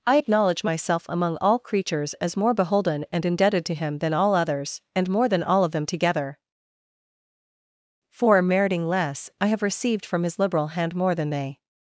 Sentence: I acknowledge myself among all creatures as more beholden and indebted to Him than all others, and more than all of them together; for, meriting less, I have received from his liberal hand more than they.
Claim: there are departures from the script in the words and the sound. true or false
false